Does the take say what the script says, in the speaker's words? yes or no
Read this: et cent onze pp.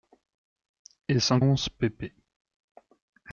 yes